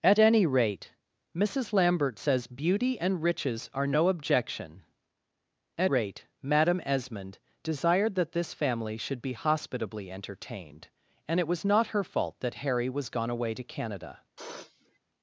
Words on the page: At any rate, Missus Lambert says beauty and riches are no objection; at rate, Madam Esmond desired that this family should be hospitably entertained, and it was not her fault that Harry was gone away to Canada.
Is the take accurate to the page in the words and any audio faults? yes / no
no